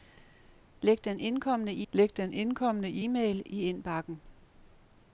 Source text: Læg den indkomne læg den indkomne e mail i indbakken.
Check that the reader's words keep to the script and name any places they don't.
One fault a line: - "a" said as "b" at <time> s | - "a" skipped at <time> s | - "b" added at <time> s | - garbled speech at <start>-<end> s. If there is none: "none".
none